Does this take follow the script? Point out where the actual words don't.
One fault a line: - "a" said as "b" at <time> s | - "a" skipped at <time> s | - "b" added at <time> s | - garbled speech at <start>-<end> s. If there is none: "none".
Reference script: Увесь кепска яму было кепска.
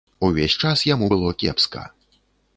- "кепска" said as "час" at 0.6 s